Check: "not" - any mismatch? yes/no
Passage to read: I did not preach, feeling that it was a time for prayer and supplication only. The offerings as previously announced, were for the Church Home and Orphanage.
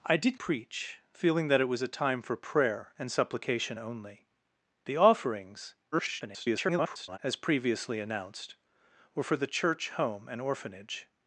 yes